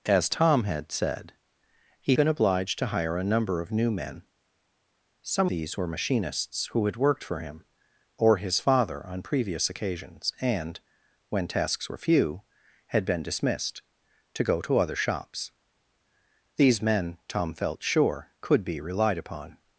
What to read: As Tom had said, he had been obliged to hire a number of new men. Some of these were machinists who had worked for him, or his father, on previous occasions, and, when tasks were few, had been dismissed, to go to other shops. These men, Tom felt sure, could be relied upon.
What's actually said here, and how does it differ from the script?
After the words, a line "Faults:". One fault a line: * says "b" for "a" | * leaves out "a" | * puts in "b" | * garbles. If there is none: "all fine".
As Tom had said, he been obliged to hire a number of new men. Some these were machinists who had worked for him, or his father, on previous occasions, and, when tasks were few, had been dismissed, to go to other shops. These men, Tom felt sure, could be relied upon.
Faults:
* leaves out "had"
* leaves out "of"